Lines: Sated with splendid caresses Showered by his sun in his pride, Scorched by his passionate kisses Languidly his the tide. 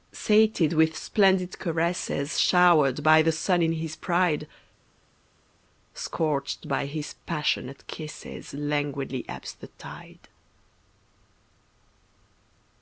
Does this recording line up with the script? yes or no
no